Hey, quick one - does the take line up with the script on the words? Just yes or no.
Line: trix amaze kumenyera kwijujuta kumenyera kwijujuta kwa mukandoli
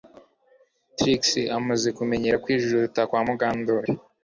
no